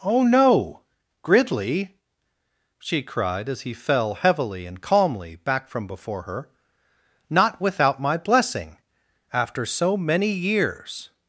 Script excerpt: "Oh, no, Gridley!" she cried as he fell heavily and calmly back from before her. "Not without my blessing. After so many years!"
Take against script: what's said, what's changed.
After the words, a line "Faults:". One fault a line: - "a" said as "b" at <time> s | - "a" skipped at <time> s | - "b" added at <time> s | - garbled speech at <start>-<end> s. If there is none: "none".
"Oh, no, Gridley!" she cried as he fell heavily and calmly back from before her. "Not without my blessing. After so many years!"
Faults:
none